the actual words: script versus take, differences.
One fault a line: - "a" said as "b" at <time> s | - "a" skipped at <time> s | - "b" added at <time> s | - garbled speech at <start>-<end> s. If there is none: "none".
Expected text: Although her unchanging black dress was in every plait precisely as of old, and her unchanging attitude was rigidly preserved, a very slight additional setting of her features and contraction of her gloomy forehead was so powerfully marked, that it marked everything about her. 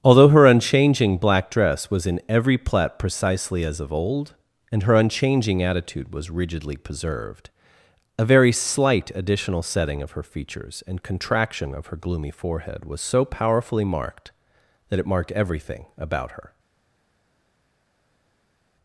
none